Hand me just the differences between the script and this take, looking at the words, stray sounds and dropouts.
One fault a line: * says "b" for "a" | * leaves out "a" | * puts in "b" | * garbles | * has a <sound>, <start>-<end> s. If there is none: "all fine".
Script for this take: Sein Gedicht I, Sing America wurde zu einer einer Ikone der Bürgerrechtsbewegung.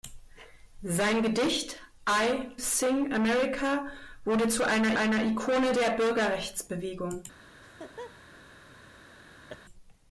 * has a laugh, 7.6-8.2 s
* has a laugh, 9.5-9.6 s